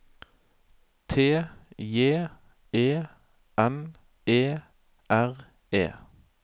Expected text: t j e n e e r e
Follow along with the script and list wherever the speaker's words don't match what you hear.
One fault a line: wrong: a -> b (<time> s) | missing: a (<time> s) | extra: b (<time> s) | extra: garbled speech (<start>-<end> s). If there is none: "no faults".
missing: e (4.6 s)